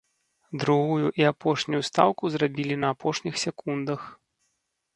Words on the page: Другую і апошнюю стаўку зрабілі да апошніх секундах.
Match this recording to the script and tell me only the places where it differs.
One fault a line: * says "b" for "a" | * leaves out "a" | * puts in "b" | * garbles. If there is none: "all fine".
* says "на" for "да"